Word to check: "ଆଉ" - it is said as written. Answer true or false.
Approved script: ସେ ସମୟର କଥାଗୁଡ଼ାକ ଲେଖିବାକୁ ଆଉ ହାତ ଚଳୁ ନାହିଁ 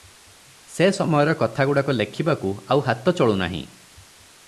true